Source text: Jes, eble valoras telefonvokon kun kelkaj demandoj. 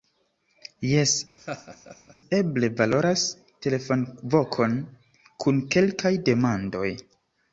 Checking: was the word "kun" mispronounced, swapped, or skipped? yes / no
no